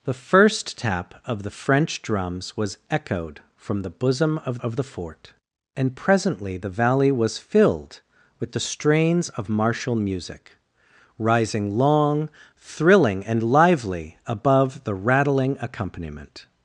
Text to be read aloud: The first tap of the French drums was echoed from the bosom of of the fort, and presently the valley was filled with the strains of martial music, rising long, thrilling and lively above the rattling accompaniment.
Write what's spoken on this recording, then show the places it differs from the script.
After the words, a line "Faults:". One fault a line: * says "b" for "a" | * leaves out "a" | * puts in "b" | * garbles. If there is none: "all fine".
The first tap of the French drums was echoed from the bosom of of the fort, and presently the valley was filled with the strains of martial music, rising long, thrilling and lively above the rattling accompaniment.
Faults:
all fine